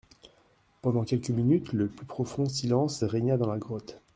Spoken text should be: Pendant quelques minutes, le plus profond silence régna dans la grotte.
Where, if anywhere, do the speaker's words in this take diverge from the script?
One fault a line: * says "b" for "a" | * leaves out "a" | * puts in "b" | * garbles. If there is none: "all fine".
all fine